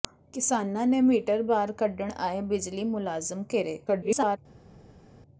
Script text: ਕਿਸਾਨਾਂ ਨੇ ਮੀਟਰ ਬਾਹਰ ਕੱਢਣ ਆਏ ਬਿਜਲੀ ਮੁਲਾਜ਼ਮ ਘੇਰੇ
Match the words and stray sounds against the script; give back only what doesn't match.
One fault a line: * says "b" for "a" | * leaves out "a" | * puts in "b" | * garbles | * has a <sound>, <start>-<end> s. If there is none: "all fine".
* garbles